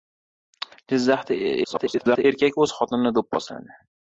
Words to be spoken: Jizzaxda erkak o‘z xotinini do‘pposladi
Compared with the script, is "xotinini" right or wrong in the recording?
right